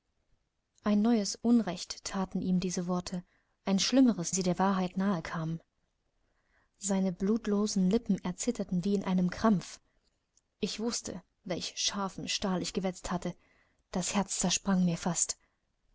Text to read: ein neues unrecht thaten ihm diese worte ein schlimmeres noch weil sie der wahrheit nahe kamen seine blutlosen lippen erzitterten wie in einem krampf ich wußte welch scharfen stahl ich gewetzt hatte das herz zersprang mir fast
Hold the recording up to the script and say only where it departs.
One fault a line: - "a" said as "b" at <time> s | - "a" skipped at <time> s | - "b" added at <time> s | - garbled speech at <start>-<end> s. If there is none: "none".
- "noch weil" skipped at 4.3 s